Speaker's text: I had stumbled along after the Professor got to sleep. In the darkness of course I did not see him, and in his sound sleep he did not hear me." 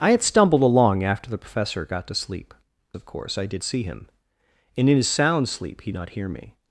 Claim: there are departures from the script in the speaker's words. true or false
true